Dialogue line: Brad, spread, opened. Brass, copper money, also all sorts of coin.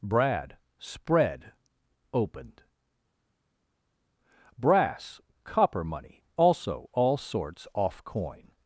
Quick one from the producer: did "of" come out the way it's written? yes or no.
no